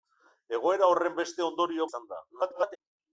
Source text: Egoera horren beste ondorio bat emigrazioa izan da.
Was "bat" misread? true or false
true